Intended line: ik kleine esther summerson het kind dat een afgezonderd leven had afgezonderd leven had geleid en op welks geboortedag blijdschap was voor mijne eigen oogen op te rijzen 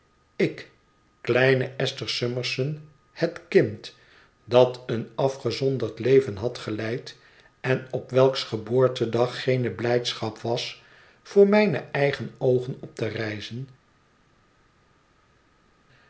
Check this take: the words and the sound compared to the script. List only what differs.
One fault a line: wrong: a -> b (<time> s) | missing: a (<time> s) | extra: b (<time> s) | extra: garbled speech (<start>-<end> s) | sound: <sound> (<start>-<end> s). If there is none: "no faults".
missing: afgezonderd leven had (6.6 s)
extra: geene (9.4 s)